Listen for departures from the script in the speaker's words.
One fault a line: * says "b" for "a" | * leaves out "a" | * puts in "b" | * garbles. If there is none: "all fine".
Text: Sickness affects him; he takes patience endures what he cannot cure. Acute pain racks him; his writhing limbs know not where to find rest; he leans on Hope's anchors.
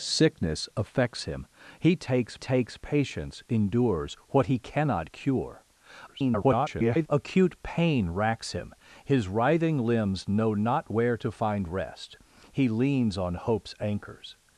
* puts in "takes"
* garbles